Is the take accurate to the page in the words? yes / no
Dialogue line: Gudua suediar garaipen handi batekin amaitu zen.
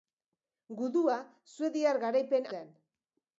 no